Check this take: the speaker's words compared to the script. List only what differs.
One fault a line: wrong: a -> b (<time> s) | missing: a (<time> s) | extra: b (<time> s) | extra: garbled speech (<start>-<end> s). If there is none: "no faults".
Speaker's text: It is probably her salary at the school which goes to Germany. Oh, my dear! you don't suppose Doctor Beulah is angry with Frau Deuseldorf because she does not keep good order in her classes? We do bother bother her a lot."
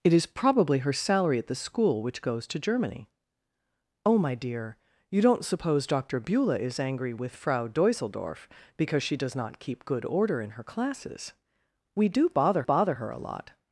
no faults